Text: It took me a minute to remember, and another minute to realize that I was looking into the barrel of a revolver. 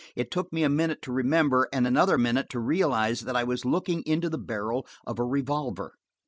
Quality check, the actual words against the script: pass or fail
pass